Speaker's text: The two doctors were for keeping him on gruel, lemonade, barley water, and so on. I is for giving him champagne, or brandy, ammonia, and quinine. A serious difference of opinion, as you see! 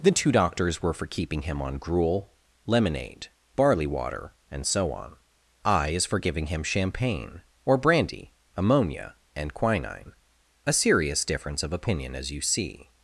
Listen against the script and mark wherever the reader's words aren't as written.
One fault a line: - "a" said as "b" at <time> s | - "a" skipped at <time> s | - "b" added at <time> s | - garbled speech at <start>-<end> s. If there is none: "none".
none